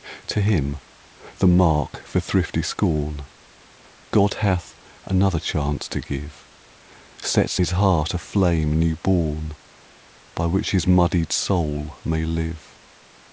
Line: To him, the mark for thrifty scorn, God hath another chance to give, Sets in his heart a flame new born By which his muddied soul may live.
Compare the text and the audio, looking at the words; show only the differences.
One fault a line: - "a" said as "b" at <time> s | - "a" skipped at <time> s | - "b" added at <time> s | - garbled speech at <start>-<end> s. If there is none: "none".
- "in" skipped at 7.6 s